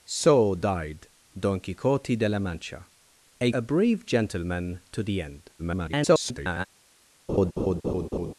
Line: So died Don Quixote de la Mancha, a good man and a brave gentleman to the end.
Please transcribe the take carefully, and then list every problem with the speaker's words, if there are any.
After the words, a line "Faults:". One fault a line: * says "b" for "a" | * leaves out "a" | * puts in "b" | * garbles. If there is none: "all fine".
So died Don Quixote de la Mancha, a a brave gentleman to the end. [garbled]
Faults:
* leaves out "good man and"
* garbles